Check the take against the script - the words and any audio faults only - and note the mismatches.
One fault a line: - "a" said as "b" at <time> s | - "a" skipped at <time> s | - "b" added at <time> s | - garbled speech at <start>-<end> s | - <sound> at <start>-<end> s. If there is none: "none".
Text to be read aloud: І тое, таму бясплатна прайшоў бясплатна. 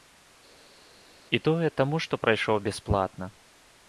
- "бясплатна" said as "што" at 2.1 s